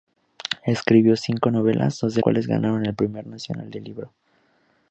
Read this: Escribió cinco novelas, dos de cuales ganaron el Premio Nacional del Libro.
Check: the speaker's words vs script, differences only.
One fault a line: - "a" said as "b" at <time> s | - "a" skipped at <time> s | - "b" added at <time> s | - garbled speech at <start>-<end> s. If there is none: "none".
none